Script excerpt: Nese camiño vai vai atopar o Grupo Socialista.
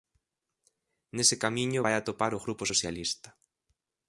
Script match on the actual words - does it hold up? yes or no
no